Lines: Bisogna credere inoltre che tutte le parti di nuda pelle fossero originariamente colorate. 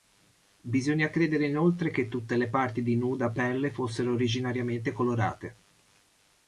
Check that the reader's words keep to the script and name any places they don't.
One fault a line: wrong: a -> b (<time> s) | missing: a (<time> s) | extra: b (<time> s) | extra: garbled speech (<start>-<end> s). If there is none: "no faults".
no faults